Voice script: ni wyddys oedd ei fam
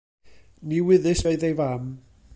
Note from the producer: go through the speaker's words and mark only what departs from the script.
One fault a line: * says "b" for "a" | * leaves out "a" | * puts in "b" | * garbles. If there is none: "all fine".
all fine